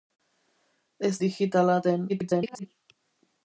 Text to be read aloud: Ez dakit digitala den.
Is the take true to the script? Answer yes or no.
no